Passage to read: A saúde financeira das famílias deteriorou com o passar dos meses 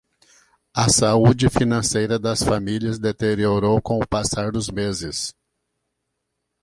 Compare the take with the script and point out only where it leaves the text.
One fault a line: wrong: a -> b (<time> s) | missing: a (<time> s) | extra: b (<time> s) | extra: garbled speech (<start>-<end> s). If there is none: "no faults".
no faults